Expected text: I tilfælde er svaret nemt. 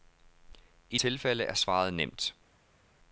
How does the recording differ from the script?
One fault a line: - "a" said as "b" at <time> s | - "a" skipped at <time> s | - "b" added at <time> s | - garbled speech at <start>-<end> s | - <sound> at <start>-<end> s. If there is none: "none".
none